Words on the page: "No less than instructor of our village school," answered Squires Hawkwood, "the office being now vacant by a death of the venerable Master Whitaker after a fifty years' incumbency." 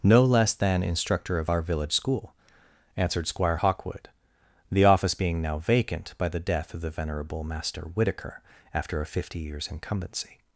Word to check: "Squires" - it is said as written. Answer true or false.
false